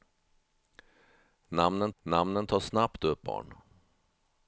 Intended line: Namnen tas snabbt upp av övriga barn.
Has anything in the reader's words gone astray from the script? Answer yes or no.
yes